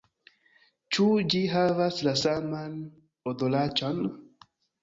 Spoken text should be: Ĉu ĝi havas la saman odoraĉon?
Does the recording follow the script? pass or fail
pass